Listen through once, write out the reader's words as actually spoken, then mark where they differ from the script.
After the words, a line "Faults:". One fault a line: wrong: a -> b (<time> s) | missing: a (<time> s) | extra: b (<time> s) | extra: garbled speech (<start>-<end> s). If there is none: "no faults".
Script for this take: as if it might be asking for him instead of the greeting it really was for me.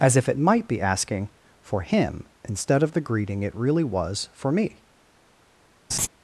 as if it might be asking for him instead of the greeting it really was for me.
Faults:
no faults